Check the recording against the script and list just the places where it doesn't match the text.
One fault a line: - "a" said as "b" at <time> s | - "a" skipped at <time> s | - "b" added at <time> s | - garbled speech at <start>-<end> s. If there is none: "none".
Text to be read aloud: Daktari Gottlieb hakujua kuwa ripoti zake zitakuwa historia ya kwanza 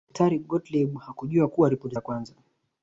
- "zake zitakuwa historia" skipped at 1.9 s